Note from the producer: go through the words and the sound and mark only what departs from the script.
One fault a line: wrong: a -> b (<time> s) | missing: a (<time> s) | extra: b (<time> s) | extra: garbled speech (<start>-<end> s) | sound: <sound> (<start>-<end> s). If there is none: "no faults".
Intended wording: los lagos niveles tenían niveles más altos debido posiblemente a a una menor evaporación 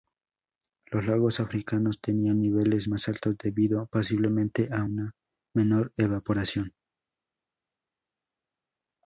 wrong: niveles -> africanos (1.4 s)
missing: a (4.9 s)